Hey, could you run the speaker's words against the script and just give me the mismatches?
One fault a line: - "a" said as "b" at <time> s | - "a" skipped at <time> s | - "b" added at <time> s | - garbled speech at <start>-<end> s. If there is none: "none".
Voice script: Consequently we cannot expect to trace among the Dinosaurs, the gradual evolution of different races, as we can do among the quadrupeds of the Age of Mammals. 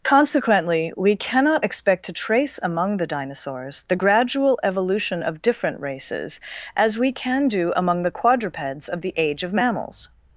none